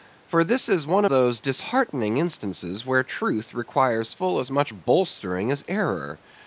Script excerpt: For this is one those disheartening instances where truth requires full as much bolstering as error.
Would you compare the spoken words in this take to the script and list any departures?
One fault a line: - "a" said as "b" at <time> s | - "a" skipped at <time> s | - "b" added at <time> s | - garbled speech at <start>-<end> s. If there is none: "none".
none